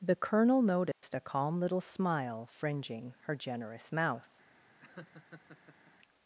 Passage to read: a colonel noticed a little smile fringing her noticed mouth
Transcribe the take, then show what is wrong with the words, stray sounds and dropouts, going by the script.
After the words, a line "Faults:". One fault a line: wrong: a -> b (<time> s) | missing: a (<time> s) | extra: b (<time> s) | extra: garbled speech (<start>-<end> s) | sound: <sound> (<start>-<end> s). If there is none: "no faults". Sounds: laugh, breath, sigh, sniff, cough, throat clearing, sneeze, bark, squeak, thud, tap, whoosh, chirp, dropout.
the colonel noticed a calm little smile fringing her generous mouth
Faults:
wrong: a -> the (0.0 s)
sound: dropout (0.9-1.0 s)
extra: calm (1.2 s)
wrong: noticed -> generous (3.4 s)
sound: laugh (4.8-5.9 s)